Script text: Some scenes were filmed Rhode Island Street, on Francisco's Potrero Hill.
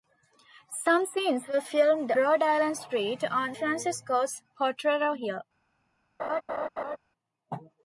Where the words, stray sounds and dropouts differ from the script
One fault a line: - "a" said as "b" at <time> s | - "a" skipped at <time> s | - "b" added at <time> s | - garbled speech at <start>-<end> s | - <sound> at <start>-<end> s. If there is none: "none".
- laugh at 6.2-7.0 s